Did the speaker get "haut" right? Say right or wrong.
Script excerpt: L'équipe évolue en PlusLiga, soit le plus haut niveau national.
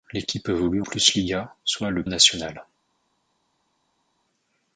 wrong